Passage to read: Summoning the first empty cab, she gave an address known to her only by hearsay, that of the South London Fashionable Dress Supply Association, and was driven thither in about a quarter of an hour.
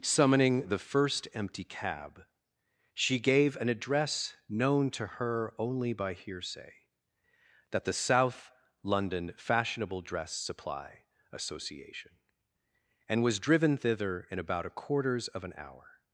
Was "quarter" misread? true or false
true